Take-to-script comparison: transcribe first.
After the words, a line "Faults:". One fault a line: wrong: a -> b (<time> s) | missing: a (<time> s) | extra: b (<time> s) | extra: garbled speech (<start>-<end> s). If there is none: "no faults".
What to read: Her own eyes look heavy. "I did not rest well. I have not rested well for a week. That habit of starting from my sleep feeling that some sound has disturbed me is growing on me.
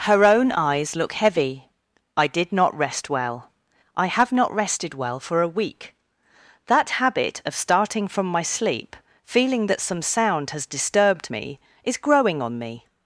Her own eyes look heavy. "I did not rest well. I have not rested well for a week. That habit of starting from my sleep feeling that some sound has disturbed me is growing on me.
Faults:
no faults